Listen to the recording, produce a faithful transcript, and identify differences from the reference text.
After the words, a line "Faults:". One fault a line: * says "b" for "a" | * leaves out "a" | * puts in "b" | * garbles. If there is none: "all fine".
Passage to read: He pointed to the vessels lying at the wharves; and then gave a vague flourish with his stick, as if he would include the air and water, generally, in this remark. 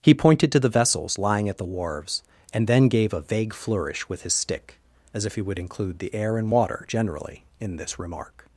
He pointed to the vessels lying at the wharves; and then gave a vague flourish with his stick, as if he would include the air and water, generally, in this remark.
Faults:
all fine